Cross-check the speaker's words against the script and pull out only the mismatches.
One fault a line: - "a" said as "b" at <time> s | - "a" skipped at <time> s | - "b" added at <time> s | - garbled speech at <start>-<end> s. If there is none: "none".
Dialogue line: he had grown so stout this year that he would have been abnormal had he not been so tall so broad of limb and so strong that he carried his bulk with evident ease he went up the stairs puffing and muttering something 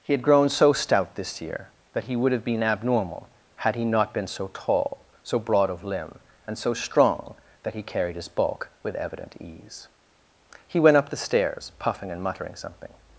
none